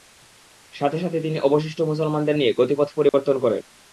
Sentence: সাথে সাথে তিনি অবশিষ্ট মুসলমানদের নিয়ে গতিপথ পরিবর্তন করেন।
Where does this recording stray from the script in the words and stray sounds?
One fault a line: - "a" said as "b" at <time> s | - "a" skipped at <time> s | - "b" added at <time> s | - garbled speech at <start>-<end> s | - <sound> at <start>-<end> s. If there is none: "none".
- dropout at 3.1-3.1 s